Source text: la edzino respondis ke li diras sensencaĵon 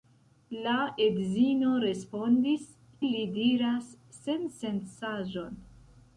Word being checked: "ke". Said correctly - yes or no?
no